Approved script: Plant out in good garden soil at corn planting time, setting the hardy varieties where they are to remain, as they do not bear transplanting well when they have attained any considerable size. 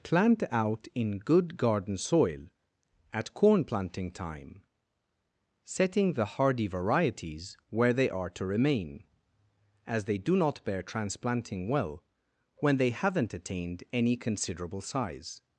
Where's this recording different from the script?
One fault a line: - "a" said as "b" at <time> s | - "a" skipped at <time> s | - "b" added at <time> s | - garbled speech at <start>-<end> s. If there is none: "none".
- "have" said as "haven't" at 12.9 s